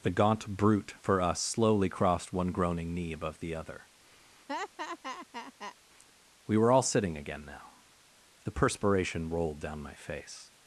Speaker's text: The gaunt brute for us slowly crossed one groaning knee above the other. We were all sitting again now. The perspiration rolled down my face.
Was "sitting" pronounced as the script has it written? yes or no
yes